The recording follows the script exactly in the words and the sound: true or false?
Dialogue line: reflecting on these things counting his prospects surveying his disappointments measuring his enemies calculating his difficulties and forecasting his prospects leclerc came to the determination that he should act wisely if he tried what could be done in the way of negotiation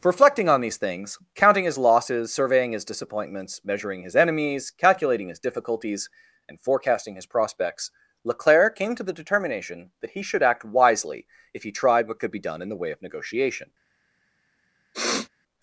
false